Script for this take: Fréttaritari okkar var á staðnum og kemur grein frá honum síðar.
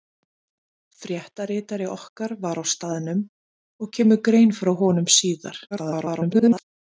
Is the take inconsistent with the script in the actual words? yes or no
yes